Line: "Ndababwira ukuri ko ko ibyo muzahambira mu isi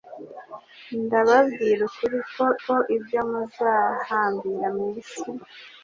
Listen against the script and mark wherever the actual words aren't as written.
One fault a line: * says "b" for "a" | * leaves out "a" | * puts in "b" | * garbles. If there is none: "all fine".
all fine